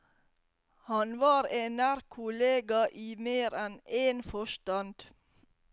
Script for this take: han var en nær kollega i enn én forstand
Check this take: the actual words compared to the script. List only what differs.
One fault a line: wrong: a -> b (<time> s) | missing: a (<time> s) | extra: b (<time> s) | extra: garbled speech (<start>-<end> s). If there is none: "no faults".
extra: mer (3.3 s)